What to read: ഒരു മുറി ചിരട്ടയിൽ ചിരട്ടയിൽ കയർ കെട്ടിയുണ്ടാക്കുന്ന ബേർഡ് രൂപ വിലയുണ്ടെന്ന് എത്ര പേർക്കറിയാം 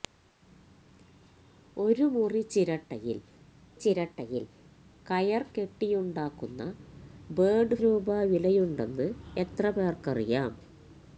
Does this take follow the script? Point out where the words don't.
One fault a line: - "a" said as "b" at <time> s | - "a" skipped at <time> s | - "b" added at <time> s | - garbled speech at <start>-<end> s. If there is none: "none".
none